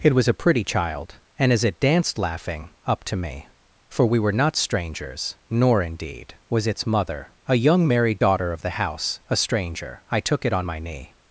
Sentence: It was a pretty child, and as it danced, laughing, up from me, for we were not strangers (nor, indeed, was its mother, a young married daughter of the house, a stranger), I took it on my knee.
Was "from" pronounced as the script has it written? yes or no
no